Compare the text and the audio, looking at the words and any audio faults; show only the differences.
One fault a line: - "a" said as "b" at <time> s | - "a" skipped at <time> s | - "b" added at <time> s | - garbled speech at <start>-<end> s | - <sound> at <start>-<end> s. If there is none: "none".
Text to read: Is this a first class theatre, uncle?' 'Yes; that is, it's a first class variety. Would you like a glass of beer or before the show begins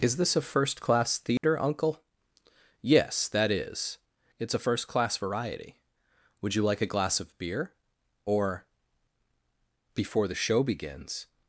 - dropout at 1.4-1.4 s